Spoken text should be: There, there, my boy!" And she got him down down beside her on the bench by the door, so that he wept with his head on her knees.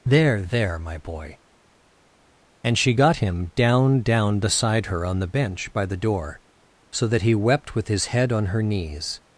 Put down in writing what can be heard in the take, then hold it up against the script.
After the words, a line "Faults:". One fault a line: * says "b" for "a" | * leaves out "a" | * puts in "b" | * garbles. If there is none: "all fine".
There, there, my boy!" And she got him down down beside her on the bench by the door, so that he wept with his head on her knees.
Faults:
all fine